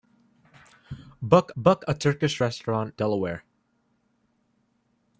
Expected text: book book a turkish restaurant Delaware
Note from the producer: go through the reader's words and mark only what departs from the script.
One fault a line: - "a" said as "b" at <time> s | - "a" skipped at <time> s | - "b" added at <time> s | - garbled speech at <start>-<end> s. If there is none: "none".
none